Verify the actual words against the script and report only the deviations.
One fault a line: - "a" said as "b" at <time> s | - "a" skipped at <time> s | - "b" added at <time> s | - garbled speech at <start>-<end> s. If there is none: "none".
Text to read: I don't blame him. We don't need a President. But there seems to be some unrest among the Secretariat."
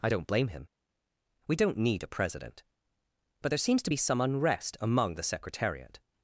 none